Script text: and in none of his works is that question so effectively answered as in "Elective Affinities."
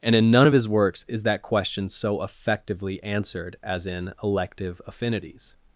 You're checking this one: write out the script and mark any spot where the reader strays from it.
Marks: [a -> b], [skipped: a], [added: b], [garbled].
and in none of his works is that question so effectively answered as in "Elective Affinities."